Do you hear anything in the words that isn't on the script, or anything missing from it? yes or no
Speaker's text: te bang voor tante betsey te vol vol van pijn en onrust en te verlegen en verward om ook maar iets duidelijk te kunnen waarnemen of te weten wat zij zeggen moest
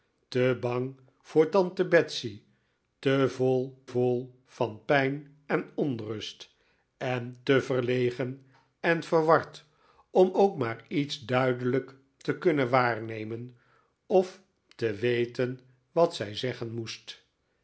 no